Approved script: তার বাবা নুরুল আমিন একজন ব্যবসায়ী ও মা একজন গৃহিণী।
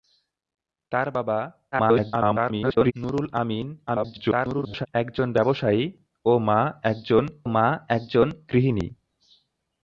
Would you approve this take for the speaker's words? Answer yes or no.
no